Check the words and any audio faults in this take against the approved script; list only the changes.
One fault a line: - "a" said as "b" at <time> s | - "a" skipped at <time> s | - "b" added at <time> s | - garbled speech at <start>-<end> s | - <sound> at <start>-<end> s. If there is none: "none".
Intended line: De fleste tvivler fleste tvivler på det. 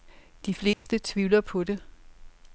- dropout at 0.7-0.9 s
- "fleste tvivler" skipped at 1.4 s